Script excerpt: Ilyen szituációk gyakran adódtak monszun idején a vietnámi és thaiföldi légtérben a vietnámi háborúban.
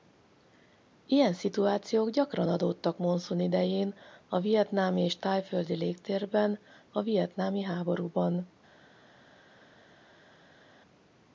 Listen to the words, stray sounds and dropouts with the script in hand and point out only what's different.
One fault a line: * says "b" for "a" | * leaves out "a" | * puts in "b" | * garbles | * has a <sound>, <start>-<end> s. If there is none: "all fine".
all fine